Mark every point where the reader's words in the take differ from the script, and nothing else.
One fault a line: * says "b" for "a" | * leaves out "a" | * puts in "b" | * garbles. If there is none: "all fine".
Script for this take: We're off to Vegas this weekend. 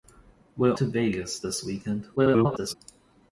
* leaves out "off"
* garbles